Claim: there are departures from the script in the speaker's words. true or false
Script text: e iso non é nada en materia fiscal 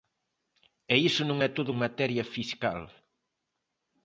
true